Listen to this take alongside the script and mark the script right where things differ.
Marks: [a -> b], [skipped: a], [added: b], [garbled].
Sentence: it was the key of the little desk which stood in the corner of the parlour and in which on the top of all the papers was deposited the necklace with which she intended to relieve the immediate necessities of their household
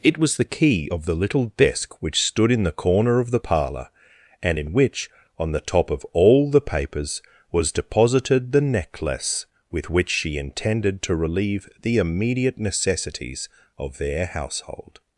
it was the key of the little desk which stood in the corner of the parlour and in which on the top of all the papers was deposited the necklace with which she intended to relieve the immediate necessities of their household